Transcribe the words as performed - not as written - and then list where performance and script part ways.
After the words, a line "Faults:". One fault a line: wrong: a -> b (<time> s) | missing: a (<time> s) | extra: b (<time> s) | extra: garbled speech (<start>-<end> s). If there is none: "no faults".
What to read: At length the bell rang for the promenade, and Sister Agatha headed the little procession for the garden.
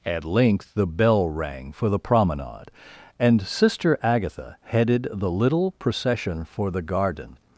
At length the bell rang for the promenade, and Sister Agatha headed the little procession for the garden.
Faults:
no faults